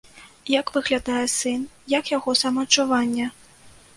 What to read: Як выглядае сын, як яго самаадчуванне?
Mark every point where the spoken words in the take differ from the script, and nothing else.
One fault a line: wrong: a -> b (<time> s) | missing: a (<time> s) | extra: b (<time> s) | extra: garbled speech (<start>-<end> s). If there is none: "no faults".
no faults